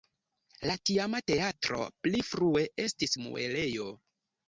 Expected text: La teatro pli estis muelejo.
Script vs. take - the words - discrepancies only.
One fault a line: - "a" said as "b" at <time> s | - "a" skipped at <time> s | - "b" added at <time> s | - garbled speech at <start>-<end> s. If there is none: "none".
- "tiama" added at 0.9 s
- "frue" added at 2.3 s